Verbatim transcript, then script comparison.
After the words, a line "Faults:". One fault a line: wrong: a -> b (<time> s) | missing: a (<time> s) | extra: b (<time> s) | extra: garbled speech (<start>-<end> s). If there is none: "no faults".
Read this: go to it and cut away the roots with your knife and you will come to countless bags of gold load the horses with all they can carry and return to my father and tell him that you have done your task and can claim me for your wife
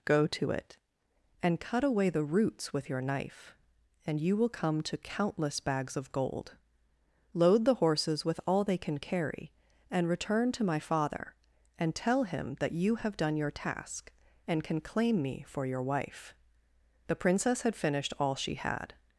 go to it and cut away the roots with your knife and you will come to countless bags of gold load the horses with all they can carry and return to my father and tell him that you have done your task and can claim me for your wife the princess had finished all she had
Faults:
extra: the princess had finished all she had (17.1 s)